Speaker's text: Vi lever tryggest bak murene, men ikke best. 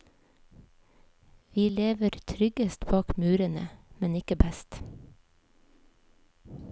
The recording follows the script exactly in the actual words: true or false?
true